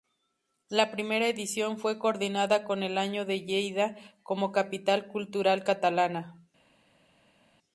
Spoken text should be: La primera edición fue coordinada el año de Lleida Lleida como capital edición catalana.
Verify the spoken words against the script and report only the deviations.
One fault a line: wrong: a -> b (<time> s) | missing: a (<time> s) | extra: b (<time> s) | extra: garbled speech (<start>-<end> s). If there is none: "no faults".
extra: con (2.6 s)
missing: Lleida (4.0 s)
wrong: edición -> cultural (5.1 s)